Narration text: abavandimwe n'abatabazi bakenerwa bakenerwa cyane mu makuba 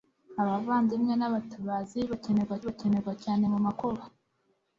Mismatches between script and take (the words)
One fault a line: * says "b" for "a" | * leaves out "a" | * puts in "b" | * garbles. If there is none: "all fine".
all fine